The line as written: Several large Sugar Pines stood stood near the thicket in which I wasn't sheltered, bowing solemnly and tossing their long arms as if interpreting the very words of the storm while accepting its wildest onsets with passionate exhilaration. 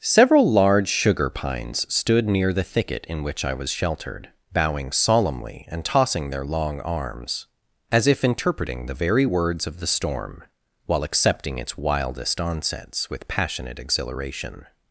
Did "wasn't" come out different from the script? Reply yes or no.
yes